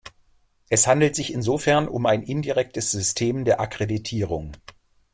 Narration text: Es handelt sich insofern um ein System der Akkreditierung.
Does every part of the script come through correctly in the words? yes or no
no